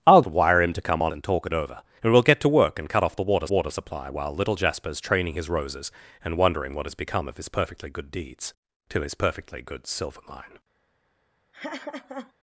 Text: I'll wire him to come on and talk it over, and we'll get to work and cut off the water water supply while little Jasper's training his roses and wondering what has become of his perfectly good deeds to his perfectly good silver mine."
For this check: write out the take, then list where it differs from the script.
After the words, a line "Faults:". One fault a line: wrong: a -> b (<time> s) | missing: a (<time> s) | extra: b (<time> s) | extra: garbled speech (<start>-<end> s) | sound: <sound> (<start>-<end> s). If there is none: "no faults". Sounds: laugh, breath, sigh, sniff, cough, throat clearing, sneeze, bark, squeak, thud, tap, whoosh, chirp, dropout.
I'll wire him to come on and talk it over, and we'll get to work and cut off the water water supply while little Jasper's training his roses and wondering what has become of his perfectly good deeds to his perfectly good silver mine."
Faults:
sound: laugh (11.5-12.3 s)